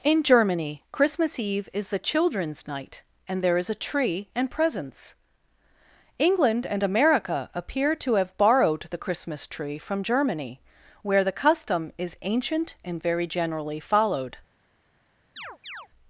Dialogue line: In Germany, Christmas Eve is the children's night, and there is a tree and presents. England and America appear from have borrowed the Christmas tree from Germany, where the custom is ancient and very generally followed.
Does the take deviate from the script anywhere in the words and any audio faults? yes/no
yes